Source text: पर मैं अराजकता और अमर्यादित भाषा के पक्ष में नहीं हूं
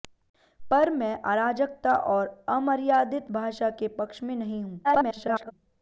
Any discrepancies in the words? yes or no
yes